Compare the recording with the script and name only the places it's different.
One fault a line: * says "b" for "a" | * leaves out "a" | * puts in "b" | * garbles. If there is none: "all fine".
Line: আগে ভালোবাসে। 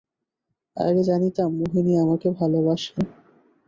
* puts in "জানিতাম মোহিনী আমাকে"